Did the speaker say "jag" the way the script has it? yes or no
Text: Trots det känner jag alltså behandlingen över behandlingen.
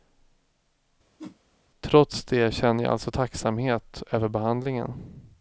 yes